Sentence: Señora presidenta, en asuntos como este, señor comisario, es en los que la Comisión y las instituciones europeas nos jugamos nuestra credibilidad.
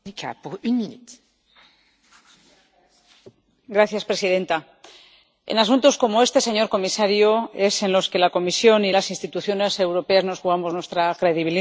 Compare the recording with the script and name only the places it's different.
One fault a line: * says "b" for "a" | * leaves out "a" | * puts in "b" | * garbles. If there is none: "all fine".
all fine